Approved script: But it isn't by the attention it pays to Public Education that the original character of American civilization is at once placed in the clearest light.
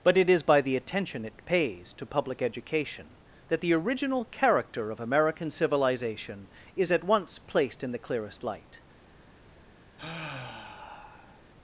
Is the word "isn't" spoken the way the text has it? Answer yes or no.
no